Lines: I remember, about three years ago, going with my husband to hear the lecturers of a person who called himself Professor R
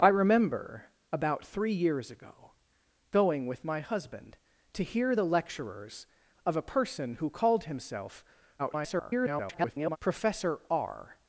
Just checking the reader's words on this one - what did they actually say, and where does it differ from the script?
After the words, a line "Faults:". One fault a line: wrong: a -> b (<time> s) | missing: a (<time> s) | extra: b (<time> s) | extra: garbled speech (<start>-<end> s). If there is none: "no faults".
I remember, about three years ago, going with my husband to hear the lecturers of a person who called himself [garbled] Professor R
Faults:
extra: garbled speech (8.6-10.0 s)